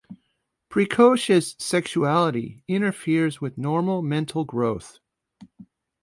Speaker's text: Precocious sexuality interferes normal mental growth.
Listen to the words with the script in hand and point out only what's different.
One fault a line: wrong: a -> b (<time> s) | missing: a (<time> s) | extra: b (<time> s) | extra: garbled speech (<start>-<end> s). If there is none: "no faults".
extra: with (3.4 s)